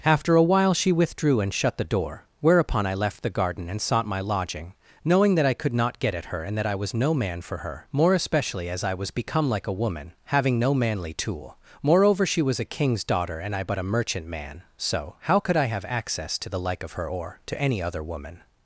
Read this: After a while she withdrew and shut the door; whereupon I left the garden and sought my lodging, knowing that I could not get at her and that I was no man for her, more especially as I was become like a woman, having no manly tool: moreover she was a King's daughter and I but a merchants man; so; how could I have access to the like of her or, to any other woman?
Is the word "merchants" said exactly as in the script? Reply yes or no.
no